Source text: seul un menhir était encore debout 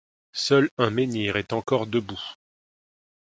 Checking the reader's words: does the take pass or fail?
fail